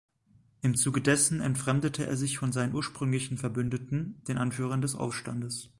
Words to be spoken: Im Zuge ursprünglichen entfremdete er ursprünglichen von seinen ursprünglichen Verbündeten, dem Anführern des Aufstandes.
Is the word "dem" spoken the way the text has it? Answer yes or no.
no